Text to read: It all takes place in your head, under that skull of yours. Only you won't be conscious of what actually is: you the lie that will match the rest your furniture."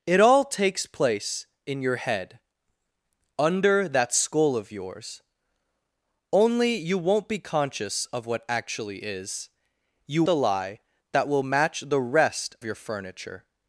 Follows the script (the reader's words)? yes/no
yes